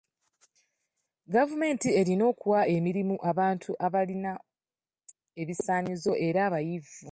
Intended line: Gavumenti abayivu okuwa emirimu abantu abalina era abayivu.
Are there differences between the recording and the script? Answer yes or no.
yes